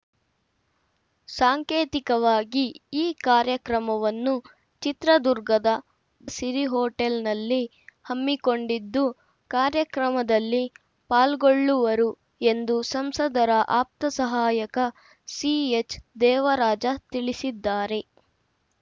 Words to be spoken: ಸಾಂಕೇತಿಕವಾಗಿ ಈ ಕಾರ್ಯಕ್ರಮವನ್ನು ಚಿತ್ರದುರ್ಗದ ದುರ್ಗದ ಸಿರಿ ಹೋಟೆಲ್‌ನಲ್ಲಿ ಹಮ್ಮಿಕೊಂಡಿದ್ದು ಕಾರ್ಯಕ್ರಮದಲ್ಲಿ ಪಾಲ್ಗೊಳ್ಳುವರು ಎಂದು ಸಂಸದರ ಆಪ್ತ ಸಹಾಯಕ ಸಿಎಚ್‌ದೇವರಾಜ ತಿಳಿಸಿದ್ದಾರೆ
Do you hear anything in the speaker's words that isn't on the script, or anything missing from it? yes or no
yes